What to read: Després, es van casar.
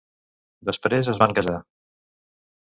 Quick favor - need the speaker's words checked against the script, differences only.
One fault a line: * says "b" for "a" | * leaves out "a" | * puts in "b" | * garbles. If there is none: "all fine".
all fine